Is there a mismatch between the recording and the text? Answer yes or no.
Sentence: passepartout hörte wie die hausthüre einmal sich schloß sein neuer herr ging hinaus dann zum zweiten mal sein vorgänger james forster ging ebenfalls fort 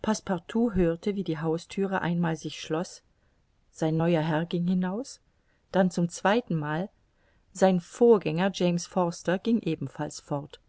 no